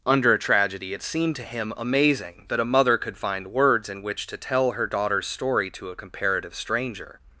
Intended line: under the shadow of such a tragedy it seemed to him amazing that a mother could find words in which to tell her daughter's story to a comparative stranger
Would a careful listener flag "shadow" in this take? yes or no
yes